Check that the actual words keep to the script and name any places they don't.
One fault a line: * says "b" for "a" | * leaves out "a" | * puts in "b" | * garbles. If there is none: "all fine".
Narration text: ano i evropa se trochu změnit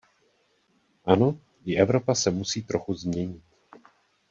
* puts in "musí"